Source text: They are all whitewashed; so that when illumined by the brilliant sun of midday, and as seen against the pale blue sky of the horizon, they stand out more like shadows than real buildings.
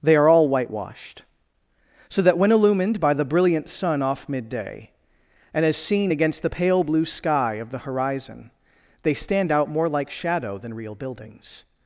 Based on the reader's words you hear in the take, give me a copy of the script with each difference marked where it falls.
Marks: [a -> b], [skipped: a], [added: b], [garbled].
They are all whitewashed; so that when illumined by the brilliant sun [of -> off] midday, and as seen against the pale blue sky of the horizon, they stand out more like [shadows -> shadow] than real buildings.